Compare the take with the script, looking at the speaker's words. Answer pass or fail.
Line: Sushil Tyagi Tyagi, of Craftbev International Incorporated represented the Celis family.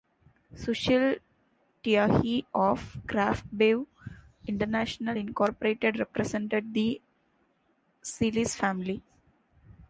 fail